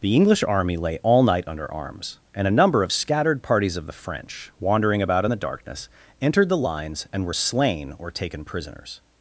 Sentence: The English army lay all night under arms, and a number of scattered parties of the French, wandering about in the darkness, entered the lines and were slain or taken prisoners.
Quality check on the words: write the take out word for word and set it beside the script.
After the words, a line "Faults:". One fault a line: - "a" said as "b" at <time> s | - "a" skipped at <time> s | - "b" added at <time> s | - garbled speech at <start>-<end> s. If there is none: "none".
The English army lay all night under arms, and a number of scattered parties of the French, wandering about in the darkness, entered the lines and were slain or taken prisoners.
Faults:
none